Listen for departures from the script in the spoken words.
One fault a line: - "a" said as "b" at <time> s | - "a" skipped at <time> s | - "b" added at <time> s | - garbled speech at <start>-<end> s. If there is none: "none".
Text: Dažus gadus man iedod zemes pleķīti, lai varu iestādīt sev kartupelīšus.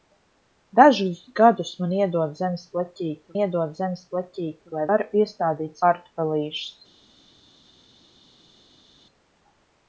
- "iedod zemes pleķīti" added at 3.4 s
- "sev" skipped at 5.9 s